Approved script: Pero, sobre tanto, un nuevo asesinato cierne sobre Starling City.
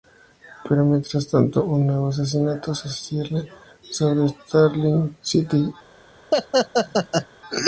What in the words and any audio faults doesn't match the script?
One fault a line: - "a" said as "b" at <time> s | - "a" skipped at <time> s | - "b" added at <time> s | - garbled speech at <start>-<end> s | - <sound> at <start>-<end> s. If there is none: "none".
- "sobre" said as "mientras" at 0.8 s
- "se" added at 2.7 s
- laugh at 6.3-7.3 s